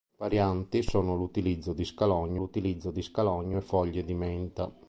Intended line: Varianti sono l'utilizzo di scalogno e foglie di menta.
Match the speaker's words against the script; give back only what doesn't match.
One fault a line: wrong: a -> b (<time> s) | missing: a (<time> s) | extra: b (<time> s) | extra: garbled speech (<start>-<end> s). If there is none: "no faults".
extra: l'utilizzo di scalogno (2.4 s)